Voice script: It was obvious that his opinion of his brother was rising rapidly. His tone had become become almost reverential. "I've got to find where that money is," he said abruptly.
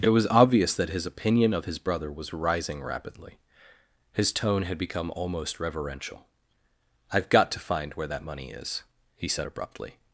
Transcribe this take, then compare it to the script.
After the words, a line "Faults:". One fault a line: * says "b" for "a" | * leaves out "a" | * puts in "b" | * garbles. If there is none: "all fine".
It was obvious that his opinion of his brother was rising rapidly. His tone had become almost reverential. "I've got to find where that money is," he said abruptly.
Faults:
* leaves out "become"